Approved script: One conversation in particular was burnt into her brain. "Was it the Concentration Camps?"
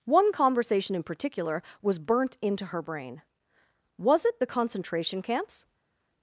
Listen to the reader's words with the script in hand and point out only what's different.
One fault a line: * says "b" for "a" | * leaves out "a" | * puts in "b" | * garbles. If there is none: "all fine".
all fine